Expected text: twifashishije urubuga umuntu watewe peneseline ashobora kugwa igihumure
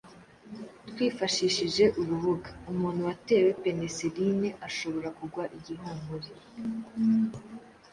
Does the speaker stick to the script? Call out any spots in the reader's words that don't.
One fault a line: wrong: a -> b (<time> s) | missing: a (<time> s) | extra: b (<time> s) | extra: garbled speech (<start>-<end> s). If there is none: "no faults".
no faults